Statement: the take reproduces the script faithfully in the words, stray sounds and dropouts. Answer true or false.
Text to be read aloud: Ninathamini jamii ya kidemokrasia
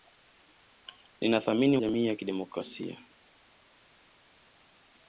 true